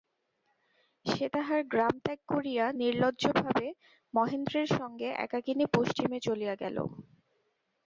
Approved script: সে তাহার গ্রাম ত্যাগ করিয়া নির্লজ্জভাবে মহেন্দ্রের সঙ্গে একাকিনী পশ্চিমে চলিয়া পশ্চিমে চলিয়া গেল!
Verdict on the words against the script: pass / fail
fail